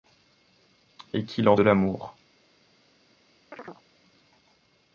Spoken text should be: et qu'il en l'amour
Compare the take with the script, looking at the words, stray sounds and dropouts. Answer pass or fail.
fail